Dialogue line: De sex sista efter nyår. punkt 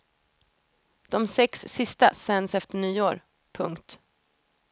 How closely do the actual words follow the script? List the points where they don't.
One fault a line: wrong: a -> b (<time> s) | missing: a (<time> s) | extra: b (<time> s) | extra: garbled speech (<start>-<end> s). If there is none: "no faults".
extra: sänds (2.1 s)